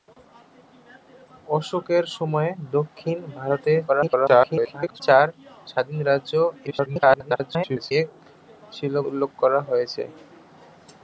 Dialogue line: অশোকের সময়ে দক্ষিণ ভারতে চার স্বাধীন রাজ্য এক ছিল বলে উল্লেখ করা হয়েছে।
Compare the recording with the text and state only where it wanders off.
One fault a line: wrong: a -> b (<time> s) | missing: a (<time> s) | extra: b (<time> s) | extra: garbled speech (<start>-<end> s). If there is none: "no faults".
extra: garbled speech (3.9-5.0 s)
extra: garbled speech (6.7-7.9 s)
missing: বলে (8.9 s)